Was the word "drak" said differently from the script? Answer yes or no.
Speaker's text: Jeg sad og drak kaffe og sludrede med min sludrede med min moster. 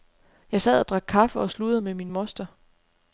no